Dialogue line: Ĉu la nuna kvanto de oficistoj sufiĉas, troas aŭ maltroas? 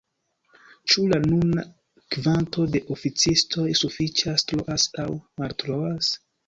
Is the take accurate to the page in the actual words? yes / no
yes